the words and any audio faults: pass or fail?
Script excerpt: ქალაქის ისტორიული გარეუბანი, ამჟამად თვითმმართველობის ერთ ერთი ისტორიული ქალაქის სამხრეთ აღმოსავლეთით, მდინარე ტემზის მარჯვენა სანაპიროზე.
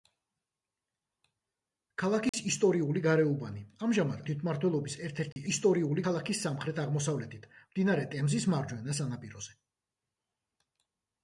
fail